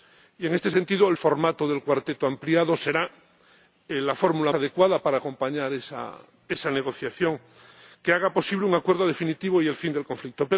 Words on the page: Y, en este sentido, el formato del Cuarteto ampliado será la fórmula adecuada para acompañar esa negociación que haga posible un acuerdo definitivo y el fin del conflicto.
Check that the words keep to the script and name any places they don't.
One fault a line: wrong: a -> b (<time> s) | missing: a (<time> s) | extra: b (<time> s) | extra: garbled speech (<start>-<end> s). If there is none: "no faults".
no faults